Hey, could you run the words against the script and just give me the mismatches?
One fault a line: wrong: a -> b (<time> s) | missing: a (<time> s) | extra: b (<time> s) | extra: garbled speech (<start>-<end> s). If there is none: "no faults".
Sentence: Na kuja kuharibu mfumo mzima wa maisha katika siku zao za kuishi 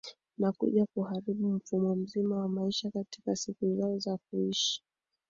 no faults